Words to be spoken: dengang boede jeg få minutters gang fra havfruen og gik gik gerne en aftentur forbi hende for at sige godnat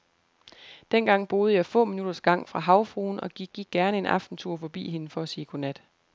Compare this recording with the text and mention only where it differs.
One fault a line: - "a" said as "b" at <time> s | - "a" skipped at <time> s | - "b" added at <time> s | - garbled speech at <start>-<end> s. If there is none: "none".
none